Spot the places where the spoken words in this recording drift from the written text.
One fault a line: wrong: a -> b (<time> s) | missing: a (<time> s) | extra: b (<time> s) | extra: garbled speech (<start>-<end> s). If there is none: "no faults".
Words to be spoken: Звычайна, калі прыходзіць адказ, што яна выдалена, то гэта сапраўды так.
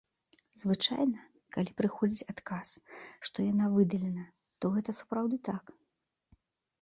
no faults